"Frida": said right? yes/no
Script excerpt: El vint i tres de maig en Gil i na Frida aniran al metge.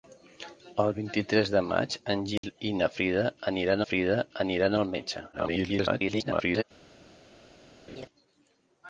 yes